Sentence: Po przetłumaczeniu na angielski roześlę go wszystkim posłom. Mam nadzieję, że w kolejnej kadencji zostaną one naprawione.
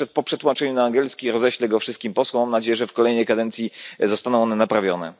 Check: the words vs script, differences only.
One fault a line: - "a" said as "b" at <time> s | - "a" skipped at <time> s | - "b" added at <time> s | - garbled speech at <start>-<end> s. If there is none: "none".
none